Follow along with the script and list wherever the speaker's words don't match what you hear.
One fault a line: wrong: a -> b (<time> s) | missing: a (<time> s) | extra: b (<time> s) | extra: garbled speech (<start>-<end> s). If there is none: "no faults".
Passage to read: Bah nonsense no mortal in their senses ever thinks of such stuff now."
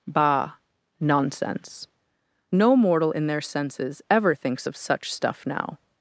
no faults